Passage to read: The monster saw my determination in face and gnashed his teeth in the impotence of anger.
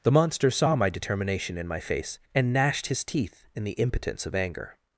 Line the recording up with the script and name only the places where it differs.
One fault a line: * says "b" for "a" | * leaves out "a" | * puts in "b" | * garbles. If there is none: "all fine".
* puts in "my"